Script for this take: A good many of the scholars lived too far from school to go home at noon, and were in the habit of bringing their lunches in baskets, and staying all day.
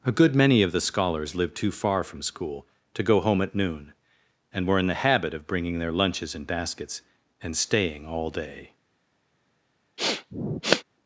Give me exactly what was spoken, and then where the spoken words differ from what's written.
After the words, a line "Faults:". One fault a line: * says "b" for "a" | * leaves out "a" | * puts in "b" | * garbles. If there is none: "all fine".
A good many of the scholars lived too far from school to go home at noon, and were in the habit of bringing their lunches in baskets, and staying all day.
Faults:
all fine